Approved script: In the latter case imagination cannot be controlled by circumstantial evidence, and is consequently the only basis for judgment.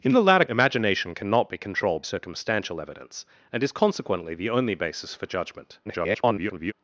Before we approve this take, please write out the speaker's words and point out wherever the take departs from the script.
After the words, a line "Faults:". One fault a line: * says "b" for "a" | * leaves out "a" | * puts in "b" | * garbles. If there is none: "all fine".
In the latter imagination cannot be controlled circumstantial evidence, and is consequently the only basis for judgment. [garbled]
Faults:
* leaves out "case"
* leaves out "by"
* garbles